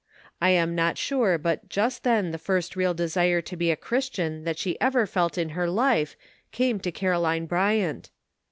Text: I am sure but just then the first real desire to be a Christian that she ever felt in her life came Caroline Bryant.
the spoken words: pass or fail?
fail